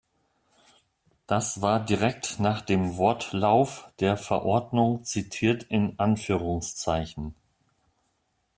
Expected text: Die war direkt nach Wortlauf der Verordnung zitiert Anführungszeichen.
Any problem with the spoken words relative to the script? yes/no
yes